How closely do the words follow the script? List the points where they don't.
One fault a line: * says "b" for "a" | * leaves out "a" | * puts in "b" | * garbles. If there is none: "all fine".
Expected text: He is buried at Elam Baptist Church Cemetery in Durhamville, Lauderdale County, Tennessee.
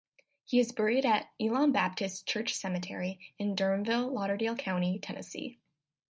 all fine